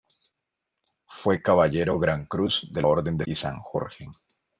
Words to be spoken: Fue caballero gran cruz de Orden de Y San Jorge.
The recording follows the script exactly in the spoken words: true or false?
true